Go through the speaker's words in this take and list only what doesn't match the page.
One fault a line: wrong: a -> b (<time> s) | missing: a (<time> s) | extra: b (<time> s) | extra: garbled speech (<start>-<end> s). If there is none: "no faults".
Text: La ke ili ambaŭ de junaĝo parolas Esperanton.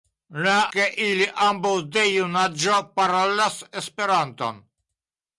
no faults